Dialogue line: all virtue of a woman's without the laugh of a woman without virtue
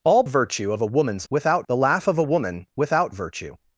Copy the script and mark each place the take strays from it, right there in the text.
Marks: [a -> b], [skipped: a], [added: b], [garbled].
all virtue of a woman's without the laugh of a woman without virtue